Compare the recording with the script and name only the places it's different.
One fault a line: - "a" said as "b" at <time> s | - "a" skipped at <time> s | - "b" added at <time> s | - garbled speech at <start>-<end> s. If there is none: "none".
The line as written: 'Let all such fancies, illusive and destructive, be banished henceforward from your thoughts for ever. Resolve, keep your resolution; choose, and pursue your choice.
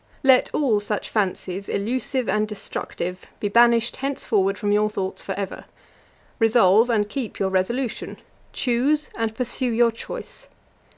- "and" added at 6.9 s